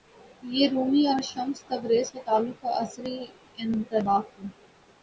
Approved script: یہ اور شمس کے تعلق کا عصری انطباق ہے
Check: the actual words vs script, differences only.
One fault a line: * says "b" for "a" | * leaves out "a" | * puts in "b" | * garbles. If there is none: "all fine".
* puts in "رومی"
* puts in "تبریز"